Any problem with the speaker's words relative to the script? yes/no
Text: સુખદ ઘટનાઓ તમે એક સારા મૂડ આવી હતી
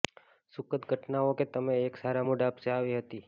yes